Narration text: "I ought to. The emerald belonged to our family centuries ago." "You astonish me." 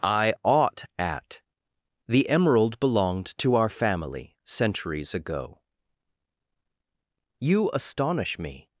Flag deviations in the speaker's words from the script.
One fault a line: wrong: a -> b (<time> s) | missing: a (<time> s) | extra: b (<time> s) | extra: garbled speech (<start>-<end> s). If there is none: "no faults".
wrong: to -> at (1.0 s)